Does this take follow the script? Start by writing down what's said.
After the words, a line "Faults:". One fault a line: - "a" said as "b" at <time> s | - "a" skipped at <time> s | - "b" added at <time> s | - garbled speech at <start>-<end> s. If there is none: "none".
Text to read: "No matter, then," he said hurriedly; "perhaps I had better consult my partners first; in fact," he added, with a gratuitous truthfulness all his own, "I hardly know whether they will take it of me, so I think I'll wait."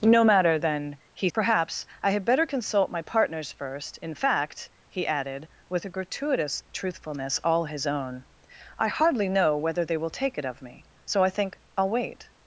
"No matter, then," he; "perhaps I had better consult my partners first; in fact," he added, with a gratuitous truthfulness all his own, "I hardly know whether they will take it of me, so I think I'll wait."
Faults:
- "said hurriedly" skipped at 1.3 s